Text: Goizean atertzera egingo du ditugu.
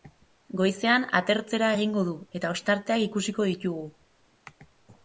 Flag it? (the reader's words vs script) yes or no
yes